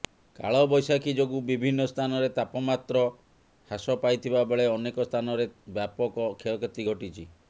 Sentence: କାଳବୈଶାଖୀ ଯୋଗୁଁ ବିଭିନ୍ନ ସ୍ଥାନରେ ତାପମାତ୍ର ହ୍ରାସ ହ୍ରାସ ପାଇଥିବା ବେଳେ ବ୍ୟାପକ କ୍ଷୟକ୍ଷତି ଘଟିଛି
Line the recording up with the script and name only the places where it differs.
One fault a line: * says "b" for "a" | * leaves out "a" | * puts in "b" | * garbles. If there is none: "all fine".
* leaves out "ହ୍ରାସ"
* puts in "ଅନେକ ସ୍ଥାନରେ"